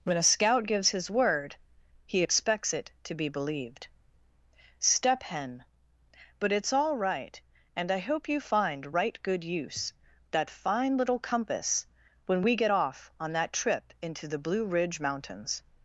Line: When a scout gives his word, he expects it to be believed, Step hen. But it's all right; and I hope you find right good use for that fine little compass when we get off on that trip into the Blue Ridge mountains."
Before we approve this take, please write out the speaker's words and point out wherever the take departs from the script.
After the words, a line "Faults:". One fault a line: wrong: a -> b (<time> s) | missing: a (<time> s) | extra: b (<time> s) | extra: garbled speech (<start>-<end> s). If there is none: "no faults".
When a scout gives his word, he expects it to be believed, Step hen. But it's all right; and I hope you find right good use that fine little compass when we get off on that trip into the Blue Ridge mountains."
Faults:
missing: for (9.9 s)